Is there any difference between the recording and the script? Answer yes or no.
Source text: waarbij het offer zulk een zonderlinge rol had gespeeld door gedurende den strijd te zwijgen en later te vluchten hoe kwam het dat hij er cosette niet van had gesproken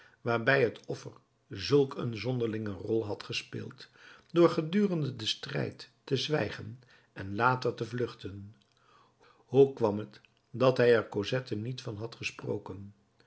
no